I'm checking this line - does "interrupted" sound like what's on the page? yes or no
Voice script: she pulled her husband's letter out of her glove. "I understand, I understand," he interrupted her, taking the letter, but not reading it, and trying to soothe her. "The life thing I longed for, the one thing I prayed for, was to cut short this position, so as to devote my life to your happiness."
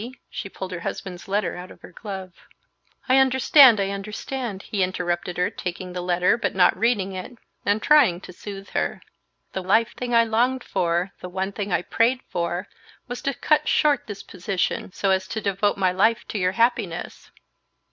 yes